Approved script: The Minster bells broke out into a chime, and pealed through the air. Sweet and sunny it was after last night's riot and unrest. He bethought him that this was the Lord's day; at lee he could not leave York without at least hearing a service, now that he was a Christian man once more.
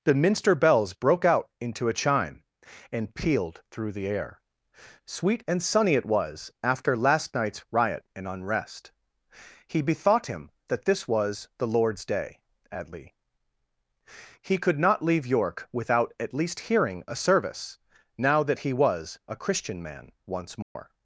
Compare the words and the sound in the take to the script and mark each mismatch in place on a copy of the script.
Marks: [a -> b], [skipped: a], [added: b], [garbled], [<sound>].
The Minster bells broke out into a chime, and pealed through the air. Sweet and sunny it was after last night's riot and unrest. He bethought him that this was the Lord's day; at lee he could not leave York without at least hearing a service, now that he was a Christian man once more. [dropout]